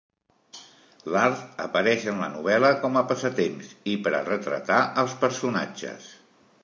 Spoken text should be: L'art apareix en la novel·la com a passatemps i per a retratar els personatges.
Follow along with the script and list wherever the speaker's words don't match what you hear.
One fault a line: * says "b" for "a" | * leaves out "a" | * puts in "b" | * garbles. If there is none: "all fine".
all fine